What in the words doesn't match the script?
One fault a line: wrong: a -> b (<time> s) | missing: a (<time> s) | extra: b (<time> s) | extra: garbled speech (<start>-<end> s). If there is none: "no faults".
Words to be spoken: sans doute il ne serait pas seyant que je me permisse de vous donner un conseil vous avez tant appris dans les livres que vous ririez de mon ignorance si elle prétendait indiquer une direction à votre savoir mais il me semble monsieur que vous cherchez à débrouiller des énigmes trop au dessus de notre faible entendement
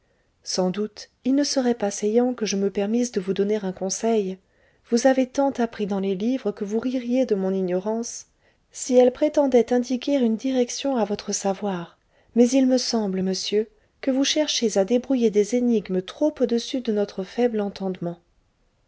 no faults